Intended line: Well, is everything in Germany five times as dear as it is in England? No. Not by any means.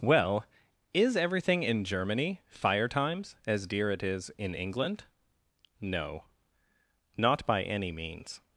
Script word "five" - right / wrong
wrong